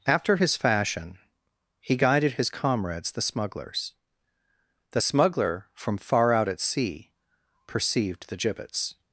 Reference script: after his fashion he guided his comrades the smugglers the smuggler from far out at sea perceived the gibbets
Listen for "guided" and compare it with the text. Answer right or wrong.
right